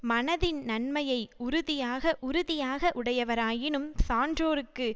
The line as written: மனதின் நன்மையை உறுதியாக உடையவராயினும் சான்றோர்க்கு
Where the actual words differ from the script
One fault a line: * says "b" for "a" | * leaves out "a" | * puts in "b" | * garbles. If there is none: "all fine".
* puts in "உறுதியாக"